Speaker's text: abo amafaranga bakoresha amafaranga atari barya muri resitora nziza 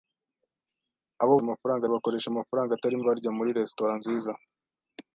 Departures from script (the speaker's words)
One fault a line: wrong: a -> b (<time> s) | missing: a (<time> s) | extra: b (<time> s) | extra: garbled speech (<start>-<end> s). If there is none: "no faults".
no faults